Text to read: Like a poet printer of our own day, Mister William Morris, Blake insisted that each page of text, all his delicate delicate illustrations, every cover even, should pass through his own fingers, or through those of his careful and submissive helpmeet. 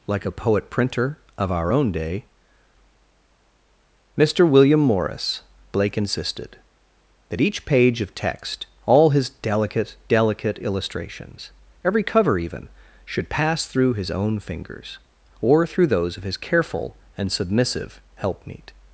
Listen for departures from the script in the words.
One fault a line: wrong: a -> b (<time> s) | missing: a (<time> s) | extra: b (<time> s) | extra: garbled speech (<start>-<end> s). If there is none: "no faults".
no faults